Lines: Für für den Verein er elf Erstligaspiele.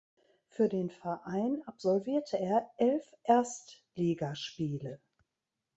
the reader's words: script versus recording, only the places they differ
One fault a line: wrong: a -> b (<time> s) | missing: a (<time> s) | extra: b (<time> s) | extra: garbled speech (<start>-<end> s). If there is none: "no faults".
missing: für (0.7 s)
extra: absolvierte (1.7 s)